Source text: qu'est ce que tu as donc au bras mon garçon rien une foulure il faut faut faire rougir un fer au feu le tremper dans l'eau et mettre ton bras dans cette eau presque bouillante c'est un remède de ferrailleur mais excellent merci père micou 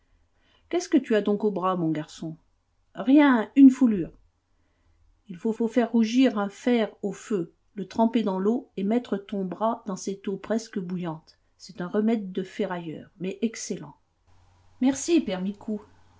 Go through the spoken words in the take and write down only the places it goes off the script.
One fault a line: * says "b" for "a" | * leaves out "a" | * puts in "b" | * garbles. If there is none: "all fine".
all fine